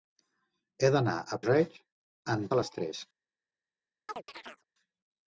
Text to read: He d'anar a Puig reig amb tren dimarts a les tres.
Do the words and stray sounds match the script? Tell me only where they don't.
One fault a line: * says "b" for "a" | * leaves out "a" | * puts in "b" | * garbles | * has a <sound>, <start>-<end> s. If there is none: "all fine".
* leaves out "Puig"
* leaves out "tren dimarts"
* has a chirp, 4.1-4.6 s